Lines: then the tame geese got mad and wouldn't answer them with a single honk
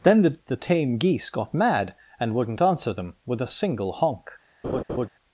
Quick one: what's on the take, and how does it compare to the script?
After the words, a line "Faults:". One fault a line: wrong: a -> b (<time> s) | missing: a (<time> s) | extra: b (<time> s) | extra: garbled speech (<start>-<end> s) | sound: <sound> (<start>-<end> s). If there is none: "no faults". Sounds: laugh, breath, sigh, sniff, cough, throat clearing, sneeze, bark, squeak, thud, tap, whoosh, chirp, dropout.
then the the tame geese got mad and wouldn't answer them with a single honk
Faults:
extra: the (0.5 s)
sound: laugh (4.6-5.1 s)